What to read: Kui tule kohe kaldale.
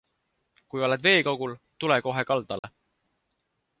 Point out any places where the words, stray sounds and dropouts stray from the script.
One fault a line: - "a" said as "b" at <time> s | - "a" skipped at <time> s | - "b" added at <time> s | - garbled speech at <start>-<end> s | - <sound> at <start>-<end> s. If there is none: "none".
- "oled veekogul" added at 0.9 s
- dropout at 2.6-2.6 s